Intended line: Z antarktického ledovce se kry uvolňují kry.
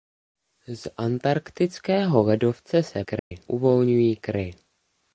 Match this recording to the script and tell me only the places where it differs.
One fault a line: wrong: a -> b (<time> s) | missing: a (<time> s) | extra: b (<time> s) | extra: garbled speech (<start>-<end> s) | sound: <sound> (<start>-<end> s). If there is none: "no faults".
sound: dropout (3.2-3.3 s)